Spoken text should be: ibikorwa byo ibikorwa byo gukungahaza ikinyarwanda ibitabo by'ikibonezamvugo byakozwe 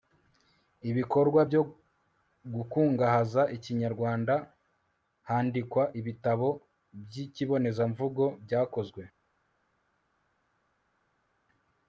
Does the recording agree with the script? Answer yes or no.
no